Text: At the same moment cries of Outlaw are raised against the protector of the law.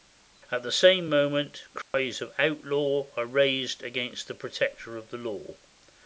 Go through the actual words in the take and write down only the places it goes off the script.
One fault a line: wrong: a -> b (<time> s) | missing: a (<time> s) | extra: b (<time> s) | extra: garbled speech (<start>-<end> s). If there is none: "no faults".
no faults